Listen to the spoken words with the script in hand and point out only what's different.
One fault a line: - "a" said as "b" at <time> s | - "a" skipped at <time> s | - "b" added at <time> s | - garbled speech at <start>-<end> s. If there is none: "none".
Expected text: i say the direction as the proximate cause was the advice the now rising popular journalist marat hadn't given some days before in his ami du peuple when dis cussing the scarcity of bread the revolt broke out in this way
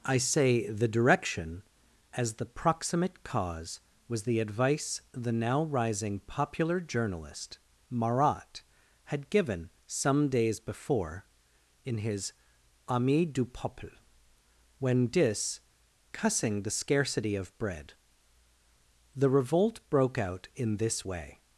- "hadn't" said as "had" at 9.1 s